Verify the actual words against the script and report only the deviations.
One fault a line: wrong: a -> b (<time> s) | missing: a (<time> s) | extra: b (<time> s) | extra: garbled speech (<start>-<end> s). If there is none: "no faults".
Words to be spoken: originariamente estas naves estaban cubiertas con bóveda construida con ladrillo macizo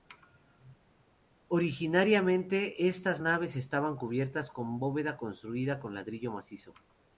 no faults